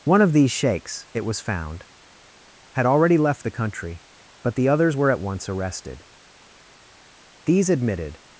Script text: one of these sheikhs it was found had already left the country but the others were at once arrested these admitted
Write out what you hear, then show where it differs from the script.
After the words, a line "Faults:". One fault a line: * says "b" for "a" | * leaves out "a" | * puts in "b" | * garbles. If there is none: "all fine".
one of these sheikhs it was found had already left the country but the others were at once arrested these admitted
Faults:
all fine